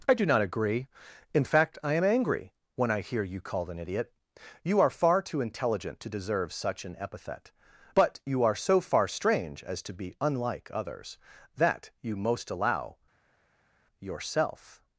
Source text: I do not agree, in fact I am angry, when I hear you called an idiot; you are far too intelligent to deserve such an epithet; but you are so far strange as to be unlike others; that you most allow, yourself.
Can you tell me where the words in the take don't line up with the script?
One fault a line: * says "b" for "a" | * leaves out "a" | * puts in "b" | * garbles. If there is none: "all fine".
all fine